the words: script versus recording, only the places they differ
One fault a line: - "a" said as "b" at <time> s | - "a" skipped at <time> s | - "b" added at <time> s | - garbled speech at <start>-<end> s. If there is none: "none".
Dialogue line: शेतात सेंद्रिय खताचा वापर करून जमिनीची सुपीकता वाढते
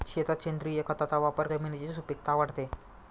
- "करून" skipped at 1.5 s